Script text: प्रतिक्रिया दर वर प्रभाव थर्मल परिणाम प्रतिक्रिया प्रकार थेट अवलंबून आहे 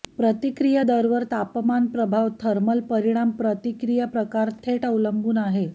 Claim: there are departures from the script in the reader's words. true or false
true